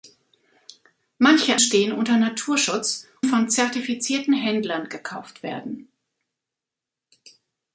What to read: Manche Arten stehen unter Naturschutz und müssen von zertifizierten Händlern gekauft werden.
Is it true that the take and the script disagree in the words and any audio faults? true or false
true